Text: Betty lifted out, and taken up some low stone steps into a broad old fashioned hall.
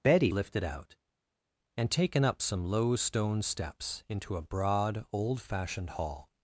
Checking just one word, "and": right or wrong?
right